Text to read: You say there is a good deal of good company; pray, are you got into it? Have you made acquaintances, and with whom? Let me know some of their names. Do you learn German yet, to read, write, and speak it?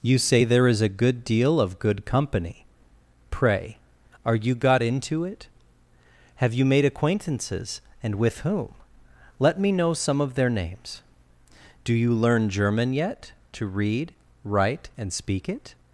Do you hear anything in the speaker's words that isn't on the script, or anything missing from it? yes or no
no